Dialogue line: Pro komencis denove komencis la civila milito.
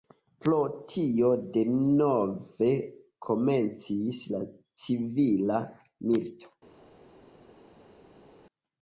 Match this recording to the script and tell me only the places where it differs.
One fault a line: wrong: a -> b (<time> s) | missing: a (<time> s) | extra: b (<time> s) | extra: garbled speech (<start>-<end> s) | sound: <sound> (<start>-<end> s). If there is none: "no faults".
wrong: komencis -> tio (0.9 s)